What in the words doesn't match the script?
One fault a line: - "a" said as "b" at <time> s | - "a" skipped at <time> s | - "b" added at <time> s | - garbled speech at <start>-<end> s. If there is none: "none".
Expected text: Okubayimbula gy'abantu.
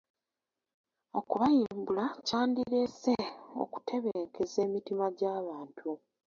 - "kyandireese okutebenkeza emitima" added at 2.3 s